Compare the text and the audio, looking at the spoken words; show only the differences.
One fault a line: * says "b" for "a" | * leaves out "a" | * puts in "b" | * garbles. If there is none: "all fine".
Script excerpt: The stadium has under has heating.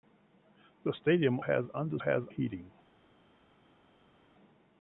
all fine